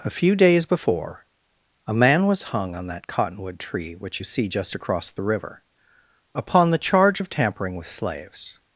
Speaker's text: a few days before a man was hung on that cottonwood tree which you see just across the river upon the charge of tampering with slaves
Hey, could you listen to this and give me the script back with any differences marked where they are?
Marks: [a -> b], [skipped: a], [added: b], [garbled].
a few days before a man was hung on that cottonwood tree which you see just across the river upon the charge of tampering with slaves